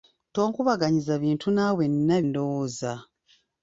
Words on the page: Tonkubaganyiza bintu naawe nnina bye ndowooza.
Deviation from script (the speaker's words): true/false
true